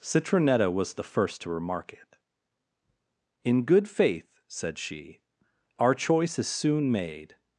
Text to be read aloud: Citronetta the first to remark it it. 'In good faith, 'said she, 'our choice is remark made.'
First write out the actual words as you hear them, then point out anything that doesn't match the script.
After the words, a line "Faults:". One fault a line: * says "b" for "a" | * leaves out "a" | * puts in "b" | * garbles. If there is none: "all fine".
Citronetta was the first to remark it. 'In good faith, 'said she, 'our choice is soon made.'
Faults:
* puts in "was"
* leaves out "it"
* says "soon" for "remark"